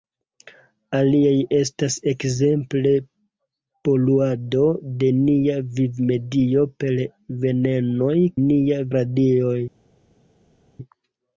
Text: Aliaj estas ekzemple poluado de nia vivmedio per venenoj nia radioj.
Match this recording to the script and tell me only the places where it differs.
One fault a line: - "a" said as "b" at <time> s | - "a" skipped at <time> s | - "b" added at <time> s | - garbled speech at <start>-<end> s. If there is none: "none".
none